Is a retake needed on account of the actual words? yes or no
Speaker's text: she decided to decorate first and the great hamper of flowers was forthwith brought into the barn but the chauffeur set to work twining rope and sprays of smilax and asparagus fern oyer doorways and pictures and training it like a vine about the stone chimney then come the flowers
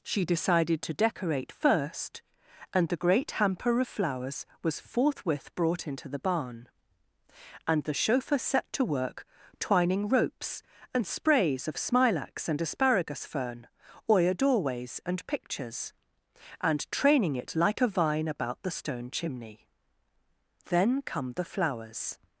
yes